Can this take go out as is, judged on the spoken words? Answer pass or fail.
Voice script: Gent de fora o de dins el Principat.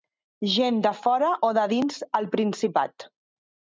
pass